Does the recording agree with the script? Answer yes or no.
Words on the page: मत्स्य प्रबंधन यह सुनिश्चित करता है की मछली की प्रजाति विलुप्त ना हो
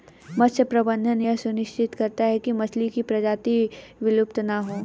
yes